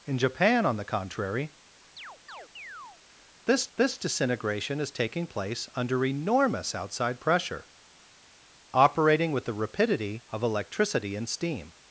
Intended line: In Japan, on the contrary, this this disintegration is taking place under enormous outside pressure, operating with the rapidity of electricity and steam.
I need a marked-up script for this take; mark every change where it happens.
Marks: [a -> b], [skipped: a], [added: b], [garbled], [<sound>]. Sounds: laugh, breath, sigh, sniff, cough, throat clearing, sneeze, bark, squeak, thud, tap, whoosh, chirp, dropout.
In Japan, on the contrary, [chirp] this this disintegration is taking place under enormous outside pressure, operating with the rapidity of electricity and steam.